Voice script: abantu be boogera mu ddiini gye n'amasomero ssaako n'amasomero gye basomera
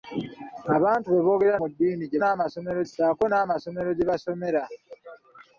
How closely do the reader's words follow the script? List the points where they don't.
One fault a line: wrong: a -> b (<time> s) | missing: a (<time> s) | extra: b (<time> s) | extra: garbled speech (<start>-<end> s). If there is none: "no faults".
no faults